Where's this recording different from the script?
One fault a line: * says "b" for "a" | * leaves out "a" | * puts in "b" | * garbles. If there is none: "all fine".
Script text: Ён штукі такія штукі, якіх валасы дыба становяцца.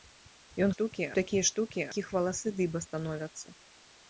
all fine